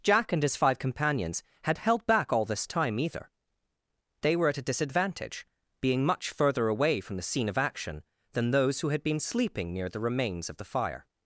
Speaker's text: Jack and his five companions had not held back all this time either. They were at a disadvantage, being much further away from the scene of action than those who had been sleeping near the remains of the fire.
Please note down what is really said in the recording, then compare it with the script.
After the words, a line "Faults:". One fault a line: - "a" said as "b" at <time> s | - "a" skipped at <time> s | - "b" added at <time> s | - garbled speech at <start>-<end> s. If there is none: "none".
Jack and his five companions had held back all this time either. They were at a disadvantage, being much further away from the scene of action than those who had been sleeping near the remains of the fire.
Faults:
- "not" skipped at 1.8 s